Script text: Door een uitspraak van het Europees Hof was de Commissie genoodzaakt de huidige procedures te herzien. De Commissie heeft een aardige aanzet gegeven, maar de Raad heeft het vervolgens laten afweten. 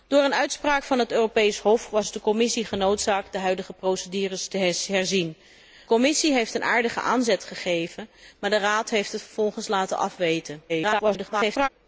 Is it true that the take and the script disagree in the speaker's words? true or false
true